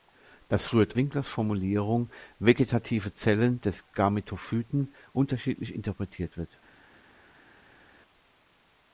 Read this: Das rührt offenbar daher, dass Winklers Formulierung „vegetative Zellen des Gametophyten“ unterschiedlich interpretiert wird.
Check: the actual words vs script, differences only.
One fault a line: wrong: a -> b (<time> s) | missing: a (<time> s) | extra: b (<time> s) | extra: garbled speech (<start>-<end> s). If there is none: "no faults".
missing: offenbar daher dass (1.0 s)